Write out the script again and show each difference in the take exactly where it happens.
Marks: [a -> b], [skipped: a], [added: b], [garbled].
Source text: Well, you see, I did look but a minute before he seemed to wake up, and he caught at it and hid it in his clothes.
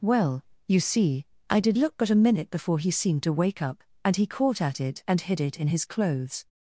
Well, you see, I did look but a minute before he seemed to wake up, and he caught at it and hid it in his clothes.